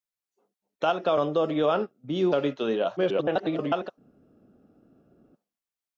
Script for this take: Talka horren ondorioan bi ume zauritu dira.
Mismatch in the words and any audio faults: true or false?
true